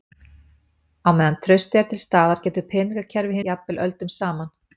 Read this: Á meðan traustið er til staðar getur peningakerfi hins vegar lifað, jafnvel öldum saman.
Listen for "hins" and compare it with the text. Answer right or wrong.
wrong